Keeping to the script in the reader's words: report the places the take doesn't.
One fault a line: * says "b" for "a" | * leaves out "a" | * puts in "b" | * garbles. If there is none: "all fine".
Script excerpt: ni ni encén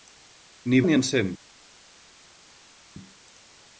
all fine